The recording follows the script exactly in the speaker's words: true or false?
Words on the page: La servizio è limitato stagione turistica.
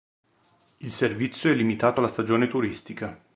false